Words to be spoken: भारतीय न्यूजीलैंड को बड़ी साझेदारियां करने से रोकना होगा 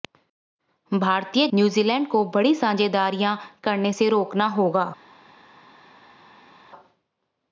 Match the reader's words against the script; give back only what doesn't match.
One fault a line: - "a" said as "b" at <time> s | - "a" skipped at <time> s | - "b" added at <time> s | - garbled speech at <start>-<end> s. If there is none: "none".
none